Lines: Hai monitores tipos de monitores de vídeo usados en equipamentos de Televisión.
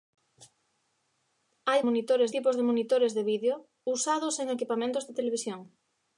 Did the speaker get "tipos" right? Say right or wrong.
right